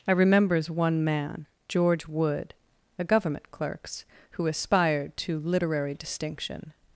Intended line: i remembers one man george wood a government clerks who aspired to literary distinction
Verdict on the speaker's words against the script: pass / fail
pass